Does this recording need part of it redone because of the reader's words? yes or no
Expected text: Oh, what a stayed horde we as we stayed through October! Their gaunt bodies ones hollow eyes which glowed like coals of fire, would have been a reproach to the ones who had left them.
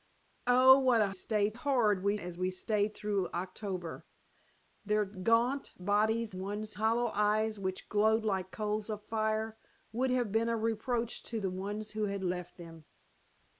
no